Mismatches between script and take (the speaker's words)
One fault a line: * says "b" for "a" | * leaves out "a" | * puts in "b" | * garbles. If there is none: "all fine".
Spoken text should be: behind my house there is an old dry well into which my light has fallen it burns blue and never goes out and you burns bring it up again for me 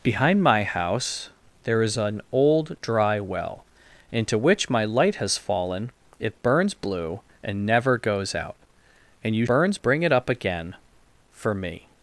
all fine